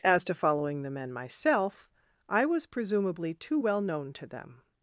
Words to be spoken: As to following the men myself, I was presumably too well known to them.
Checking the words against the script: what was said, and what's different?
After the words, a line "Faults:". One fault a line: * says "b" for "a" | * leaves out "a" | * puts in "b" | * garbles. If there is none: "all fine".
As to following the men myself, I was presumably too well known to them.
Faults:
all fine